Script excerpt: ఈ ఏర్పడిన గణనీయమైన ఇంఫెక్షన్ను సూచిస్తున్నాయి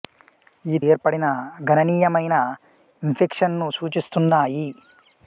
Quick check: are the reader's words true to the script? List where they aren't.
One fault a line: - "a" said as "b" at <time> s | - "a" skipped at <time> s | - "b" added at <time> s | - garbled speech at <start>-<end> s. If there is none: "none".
none